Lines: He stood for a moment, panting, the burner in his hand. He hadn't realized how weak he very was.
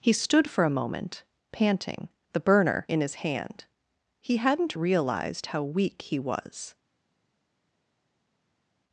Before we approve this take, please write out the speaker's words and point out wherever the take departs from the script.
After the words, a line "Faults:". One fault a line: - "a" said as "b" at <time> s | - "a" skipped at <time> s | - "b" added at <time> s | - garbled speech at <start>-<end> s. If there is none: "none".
He stood for a moment, panting, the burner in his hand. He hadn't realized how weak he was.
Faults:
- "very" skipped at 6.2 s